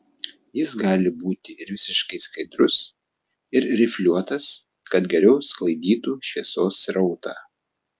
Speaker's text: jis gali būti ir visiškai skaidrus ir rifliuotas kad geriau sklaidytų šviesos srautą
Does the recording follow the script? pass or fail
pass